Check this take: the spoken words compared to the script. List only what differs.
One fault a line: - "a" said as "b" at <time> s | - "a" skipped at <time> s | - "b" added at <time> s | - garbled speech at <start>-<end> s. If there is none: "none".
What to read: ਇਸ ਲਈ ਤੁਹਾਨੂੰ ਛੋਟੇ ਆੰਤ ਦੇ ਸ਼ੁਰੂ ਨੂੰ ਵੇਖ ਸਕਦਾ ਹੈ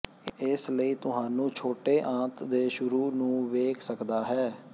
none